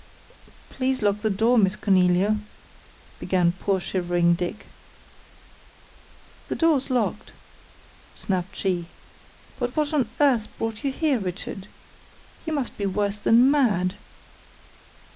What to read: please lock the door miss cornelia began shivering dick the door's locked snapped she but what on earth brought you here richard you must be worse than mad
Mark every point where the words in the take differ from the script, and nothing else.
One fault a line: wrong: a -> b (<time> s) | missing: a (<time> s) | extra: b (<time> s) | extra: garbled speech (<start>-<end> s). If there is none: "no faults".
extra: poor (3.5 s)